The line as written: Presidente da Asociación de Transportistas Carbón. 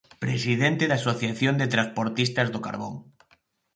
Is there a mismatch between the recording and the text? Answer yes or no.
yes